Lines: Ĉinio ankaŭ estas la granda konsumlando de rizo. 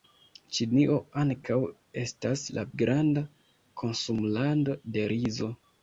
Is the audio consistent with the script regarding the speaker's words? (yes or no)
yes